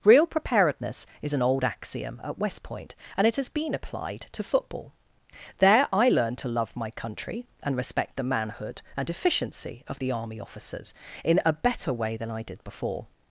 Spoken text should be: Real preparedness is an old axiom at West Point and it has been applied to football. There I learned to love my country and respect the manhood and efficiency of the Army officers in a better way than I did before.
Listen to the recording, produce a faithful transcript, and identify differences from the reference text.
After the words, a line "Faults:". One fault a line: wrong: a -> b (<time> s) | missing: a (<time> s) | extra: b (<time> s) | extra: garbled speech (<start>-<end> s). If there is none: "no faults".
Real preparedness is an old axiom at West Point and it has been applied to football. There I learned to love my country and respect the manhood and efficiency of the Army officers in a better way than I did before.
Faults:
no faults